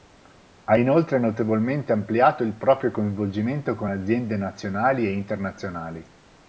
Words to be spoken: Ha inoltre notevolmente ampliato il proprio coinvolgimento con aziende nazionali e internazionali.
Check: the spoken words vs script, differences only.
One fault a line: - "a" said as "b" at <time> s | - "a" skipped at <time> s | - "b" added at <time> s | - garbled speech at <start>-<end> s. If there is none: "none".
none